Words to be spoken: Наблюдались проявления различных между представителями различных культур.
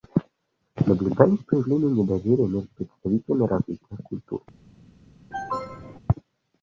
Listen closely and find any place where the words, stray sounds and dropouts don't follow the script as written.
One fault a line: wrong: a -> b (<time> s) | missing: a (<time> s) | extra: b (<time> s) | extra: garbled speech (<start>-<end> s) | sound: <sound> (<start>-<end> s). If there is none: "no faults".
wrong: различных -> недоверия (2.0 s)
sound: cough (5.3-6.0 s)